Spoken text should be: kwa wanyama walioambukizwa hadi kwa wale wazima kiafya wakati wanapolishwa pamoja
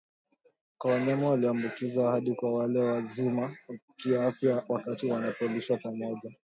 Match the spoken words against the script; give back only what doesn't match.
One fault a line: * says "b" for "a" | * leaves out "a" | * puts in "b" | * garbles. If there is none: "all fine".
all fine